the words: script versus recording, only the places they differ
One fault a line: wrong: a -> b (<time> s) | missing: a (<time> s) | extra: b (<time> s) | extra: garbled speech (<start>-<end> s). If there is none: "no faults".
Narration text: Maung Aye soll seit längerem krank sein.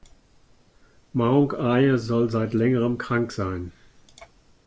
no faults